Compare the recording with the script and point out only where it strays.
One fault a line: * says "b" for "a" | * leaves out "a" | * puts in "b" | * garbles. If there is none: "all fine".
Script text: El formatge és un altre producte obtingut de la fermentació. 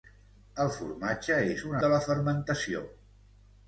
* leaves out "altre producte obtingut"